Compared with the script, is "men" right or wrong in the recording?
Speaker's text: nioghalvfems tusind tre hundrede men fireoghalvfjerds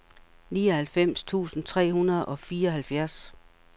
wrong